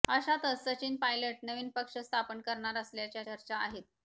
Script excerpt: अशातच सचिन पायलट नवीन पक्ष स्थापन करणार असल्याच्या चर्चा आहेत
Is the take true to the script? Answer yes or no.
yes